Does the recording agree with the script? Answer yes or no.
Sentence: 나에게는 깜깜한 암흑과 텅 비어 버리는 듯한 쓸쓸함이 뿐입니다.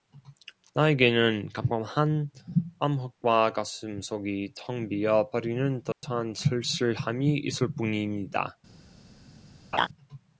no